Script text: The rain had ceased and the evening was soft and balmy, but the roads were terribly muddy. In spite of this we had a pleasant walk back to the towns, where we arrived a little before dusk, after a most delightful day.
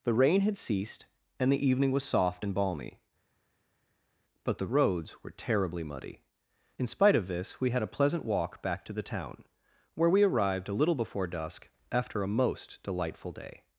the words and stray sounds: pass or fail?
fail